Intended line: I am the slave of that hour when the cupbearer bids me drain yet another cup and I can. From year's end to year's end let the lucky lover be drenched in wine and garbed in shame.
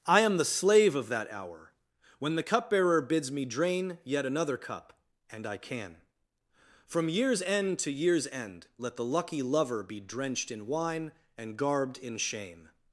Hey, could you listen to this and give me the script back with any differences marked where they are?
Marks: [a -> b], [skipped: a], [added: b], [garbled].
I am the slave of that hour when the cupbearer bids me drain yet another cup and I can. From year's end to year's end let the lucky lover be drenched in wine and garbed in shame.